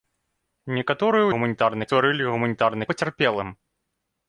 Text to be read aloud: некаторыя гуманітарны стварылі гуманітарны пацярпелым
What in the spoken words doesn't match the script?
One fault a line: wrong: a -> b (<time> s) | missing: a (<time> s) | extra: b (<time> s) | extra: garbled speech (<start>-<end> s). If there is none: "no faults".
no faults